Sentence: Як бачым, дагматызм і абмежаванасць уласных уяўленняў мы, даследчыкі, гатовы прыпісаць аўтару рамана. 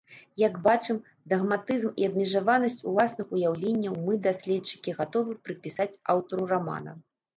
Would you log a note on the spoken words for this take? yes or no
no